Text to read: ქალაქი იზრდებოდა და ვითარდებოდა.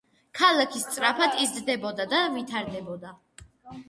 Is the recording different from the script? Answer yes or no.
yes